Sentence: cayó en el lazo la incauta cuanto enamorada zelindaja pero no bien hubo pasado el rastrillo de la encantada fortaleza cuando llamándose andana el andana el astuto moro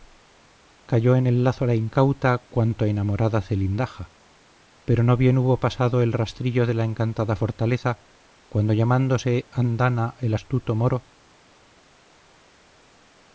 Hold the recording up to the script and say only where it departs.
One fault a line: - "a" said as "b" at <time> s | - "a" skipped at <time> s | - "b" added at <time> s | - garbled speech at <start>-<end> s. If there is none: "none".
- "andana el" skipped at 10.3 s